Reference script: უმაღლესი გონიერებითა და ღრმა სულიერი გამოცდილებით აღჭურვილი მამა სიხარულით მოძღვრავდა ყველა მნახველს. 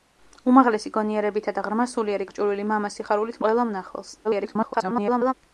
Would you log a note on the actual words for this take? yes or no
yes